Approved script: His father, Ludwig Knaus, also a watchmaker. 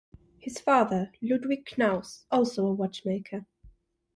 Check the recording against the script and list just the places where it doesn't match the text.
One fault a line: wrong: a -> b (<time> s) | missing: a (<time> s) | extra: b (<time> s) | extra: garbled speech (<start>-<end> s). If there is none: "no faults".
no faults